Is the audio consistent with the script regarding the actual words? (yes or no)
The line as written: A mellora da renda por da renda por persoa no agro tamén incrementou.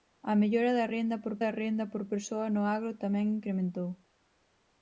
yes